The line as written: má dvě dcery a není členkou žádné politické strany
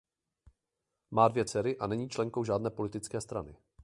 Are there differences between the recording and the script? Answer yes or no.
no